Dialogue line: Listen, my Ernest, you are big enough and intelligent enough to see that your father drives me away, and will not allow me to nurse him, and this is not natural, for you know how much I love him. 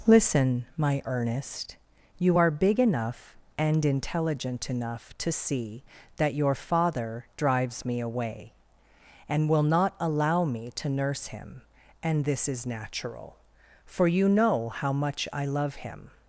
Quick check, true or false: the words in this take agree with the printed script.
false